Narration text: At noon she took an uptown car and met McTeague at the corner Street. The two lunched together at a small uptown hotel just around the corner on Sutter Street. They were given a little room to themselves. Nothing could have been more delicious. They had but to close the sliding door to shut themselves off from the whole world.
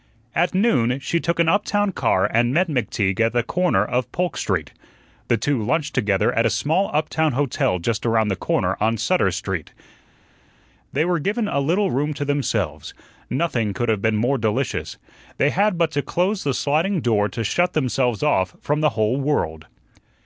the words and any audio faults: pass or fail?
fail